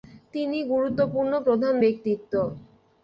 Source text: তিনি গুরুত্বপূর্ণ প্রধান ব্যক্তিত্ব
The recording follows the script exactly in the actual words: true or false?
true